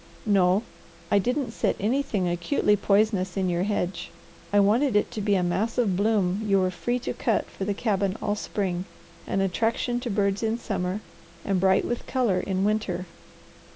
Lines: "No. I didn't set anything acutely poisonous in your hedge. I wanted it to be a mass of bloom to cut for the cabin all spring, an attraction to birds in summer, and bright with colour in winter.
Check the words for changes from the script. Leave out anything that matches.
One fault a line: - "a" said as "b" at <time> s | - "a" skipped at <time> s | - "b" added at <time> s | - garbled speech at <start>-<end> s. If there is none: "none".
- "you were free" added at 6.4 s